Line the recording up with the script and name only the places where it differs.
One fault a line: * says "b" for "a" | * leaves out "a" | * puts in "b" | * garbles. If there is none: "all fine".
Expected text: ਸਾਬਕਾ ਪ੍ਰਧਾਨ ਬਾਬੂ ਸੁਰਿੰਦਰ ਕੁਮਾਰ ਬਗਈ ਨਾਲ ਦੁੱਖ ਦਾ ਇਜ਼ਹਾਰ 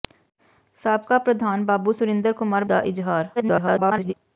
* leaves out "ਬਗਈ ਨਾਲ ਦੁੱਖ"
* garbles